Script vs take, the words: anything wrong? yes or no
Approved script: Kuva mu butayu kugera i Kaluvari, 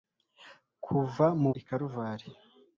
yes